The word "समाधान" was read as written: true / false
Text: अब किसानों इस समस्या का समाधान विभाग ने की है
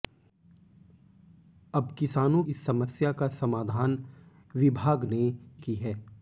true